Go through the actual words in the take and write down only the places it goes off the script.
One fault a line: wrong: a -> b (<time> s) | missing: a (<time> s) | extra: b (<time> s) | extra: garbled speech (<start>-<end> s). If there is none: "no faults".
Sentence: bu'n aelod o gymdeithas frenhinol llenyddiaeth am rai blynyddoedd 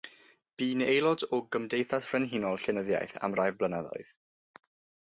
no faults